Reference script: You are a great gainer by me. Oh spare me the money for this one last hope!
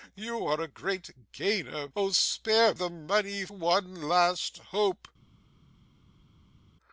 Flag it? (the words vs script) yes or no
yes